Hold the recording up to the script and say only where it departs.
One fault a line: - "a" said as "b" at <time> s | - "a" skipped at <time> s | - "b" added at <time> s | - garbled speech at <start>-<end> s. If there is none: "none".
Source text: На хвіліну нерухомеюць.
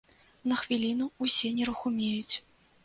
- "ўсе" added at 1.3 s